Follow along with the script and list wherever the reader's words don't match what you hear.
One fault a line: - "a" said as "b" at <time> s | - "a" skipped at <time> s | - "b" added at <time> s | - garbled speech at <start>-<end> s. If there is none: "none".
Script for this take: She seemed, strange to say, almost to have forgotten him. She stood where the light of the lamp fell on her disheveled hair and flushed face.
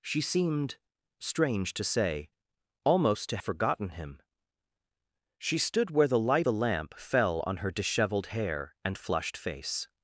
- "have" skipped at 3.4 s
- "of" skipped at 6.5 s